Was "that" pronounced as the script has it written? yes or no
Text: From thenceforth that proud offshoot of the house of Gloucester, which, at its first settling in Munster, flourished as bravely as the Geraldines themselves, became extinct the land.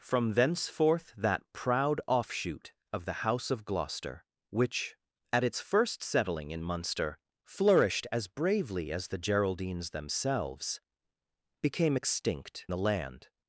yes